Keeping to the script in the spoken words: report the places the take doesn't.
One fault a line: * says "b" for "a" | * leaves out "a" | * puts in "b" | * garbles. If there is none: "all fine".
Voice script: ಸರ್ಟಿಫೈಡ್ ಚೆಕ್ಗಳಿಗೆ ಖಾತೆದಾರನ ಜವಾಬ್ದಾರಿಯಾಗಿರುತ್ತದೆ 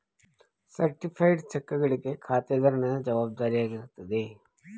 all fine